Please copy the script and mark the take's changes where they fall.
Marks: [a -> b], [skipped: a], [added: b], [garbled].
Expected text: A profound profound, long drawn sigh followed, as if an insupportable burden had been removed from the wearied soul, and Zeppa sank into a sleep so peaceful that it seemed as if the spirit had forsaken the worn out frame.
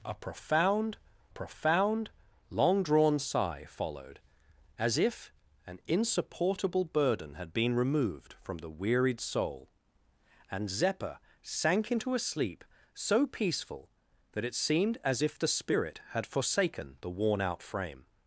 A profound profound, long drawn sigh followed, as if an insupportable burden had been removed from the wearied soul, and Zeppa sank into a sleep so peaceful that it seemed as if the spirit had forsaken the worn out frame.